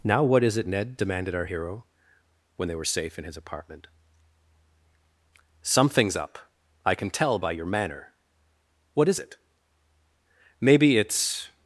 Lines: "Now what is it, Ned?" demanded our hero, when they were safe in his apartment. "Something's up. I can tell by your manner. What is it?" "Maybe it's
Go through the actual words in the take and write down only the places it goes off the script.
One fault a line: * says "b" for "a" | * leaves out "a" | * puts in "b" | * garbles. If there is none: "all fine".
all fine